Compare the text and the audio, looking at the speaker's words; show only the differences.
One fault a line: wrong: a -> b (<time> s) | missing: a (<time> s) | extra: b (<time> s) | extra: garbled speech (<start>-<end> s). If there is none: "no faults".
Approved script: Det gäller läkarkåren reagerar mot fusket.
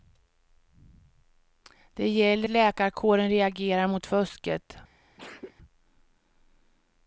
no faults